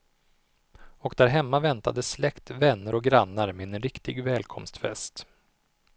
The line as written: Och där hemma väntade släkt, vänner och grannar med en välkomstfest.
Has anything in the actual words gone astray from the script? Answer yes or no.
yes